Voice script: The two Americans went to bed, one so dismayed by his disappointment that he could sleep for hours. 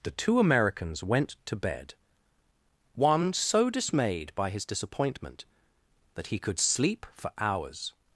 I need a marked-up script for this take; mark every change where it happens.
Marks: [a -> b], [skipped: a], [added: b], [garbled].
The two Americans went to bed, one so dismayed by his disappointment that he could sleep for hours.